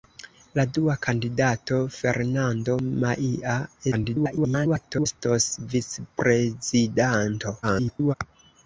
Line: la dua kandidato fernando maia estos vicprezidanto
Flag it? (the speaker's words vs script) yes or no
yes